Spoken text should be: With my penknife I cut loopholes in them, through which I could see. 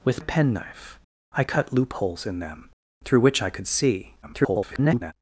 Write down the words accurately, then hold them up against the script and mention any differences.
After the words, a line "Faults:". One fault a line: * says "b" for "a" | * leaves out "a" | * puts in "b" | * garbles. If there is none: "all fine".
With penknife I cut loopholes in them, through which I could see. [garbled]
Faults:
* leaves out "my"
* garbles